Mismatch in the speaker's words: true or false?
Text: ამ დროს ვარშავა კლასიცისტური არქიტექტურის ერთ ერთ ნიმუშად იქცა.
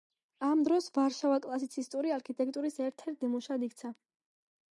false